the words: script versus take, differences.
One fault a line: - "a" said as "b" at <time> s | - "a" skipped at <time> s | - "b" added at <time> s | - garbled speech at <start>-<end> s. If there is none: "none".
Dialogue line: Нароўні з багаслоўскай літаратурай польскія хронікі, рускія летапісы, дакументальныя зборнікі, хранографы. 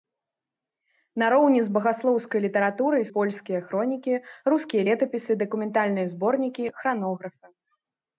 none